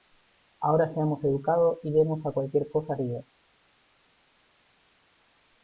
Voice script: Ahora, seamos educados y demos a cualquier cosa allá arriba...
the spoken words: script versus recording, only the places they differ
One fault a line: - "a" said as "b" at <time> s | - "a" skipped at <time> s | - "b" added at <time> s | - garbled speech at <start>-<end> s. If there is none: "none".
- "allá" skipped at 3.0 s